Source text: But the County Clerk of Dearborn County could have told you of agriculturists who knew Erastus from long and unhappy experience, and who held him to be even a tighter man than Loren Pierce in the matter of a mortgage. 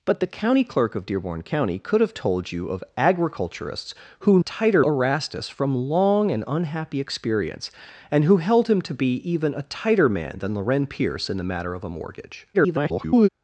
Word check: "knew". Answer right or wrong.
wrong